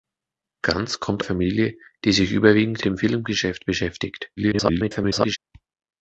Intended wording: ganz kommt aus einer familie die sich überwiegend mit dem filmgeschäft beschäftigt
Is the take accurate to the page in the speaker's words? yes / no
no